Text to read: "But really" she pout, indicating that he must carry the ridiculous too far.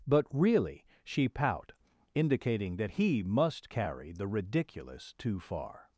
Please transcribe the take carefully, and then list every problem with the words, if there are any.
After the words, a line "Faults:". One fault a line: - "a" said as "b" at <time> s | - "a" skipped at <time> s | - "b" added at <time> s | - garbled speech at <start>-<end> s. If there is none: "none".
"But really" she pout, indicating that he must carry the ridiculous too far.
Faults:
none